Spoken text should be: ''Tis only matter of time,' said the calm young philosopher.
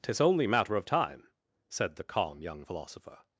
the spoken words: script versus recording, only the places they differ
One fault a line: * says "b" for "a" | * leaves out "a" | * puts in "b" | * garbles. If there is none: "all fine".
all fine